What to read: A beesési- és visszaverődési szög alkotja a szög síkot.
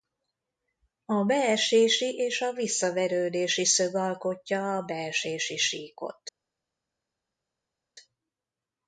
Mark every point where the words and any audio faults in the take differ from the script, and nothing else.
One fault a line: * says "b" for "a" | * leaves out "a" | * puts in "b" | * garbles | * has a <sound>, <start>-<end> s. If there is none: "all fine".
* puts in "a"
* says "beesési" for "szög"